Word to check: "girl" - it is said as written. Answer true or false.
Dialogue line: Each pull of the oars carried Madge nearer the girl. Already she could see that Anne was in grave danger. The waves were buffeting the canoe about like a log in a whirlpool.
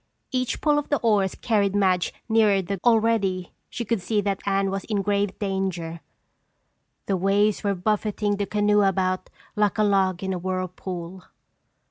false